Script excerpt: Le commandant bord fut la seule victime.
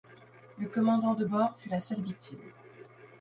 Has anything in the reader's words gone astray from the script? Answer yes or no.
yes